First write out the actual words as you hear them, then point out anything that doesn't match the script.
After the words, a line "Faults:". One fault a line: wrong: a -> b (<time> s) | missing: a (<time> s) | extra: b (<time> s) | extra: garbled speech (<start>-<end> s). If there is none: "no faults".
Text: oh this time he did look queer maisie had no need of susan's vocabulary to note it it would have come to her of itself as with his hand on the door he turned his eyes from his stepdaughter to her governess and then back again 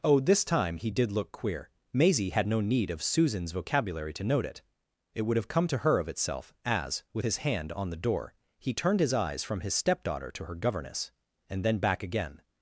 oh this time he did look queer maisie had no need of susan's vocabulary to note it it would have come to her of itself as with his hand on the door he turned his eyes from his stepdaughter to her governess and then back again
Faults:
no faults